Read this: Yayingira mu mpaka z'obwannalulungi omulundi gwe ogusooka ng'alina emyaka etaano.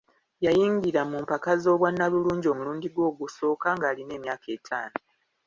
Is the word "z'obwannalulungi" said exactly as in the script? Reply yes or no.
yes